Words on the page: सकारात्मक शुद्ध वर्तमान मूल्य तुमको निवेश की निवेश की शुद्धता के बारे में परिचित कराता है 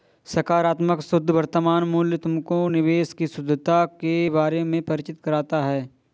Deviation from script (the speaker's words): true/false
true